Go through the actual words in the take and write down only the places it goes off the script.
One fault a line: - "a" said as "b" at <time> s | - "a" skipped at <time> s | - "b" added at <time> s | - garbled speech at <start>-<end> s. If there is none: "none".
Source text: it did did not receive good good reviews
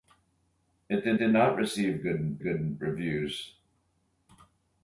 none